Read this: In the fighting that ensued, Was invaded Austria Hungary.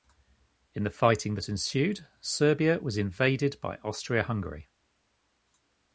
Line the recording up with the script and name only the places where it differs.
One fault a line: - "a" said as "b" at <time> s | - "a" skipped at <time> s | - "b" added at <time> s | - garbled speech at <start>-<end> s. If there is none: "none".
- "Serbia" added at 2.2 s
- "by" added at 3.6 s